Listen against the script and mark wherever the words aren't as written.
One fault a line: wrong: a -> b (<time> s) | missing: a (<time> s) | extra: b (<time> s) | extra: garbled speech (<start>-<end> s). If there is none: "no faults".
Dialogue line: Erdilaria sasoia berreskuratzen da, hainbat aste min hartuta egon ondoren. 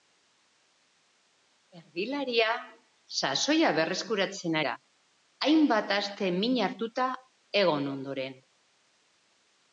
no faults